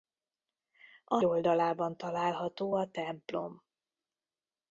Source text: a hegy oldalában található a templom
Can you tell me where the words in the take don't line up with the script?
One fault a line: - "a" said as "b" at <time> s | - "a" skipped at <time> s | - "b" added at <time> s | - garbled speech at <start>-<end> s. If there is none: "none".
- "hegy" skipped at 1.2 s